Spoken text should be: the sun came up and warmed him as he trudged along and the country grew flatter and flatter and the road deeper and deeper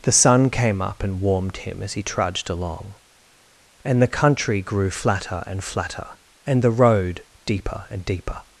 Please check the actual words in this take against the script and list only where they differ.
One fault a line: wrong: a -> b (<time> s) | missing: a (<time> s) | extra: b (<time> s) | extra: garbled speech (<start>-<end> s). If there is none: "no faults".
no faults